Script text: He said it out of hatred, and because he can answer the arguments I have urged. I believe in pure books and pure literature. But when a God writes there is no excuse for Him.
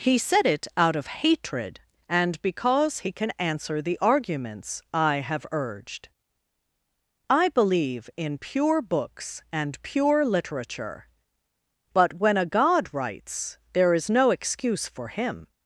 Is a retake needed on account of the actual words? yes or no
no